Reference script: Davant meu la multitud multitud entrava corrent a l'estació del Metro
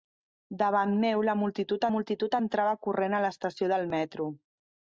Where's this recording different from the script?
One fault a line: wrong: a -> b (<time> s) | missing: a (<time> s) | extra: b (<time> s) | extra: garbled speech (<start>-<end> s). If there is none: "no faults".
no faults